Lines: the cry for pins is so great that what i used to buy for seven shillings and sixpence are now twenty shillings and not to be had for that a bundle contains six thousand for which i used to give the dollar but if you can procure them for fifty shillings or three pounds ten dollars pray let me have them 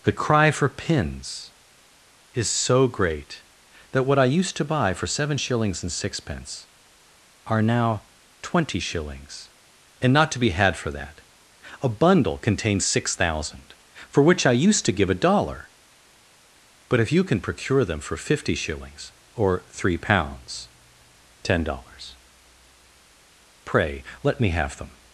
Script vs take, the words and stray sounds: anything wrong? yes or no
yes